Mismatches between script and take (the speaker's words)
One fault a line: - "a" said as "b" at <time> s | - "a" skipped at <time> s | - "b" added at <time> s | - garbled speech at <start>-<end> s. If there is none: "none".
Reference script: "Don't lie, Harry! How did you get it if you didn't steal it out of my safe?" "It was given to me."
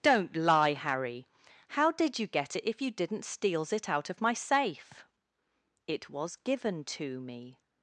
- "steal" said as "steals" at 3.2 s